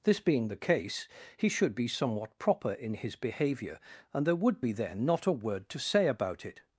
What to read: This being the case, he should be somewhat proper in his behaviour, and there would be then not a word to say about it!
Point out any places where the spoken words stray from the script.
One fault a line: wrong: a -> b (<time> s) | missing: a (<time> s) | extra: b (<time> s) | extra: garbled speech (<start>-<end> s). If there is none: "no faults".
no faults